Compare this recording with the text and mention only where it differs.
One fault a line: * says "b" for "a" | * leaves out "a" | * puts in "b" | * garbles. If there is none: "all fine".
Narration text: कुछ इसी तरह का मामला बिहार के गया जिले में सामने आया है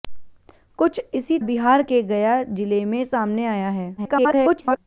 * leaves out "तरह का मामला"
* garbles